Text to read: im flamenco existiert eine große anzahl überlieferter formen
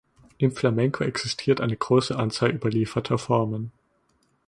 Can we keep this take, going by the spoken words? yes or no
yes